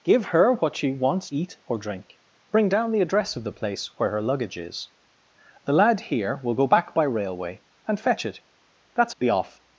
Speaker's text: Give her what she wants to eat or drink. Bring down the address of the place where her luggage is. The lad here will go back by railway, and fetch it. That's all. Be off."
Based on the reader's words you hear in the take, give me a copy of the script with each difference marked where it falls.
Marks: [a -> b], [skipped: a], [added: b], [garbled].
Give her what she wants [skipped: to] eat or drink. Bring down the address of the place where her luggage is. The lad here will go back by railway, and fetch it. That's [skipped: all.] Be off."